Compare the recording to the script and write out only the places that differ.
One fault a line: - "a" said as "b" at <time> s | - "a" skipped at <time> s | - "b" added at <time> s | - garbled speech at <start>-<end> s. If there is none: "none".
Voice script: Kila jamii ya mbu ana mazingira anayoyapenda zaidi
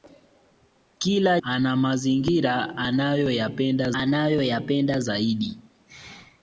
- "jamii ya mbu" skipped at 1.4 s
- "anayoyapenda" added at 3.9 s